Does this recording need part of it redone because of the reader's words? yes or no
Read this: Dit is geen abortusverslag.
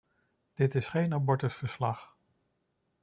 no